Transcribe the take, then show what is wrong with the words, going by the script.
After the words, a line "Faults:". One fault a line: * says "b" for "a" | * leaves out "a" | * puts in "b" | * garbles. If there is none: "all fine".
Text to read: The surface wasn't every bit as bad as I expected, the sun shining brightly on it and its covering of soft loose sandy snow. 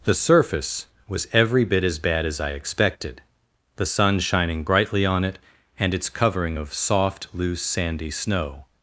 The surface was every bit as bad as I expected, the sun shining brightly on it and its covering of soft loose sandy snow.
Faults:
* says "was" for "wasn't"